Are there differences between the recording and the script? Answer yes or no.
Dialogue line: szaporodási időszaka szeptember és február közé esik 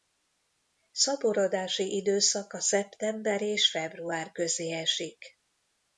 no